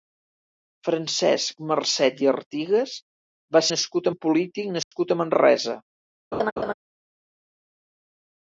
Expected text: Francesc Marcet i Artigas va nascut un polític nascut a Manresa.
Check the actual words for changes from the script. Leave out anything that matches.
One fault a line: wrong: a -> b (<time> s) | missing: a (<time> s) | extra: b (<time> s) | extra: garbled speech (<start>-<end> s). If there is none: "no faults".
no faults